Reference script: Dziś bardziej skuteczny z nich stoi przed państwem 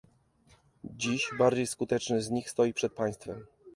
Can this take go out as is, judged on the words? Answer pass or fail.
pass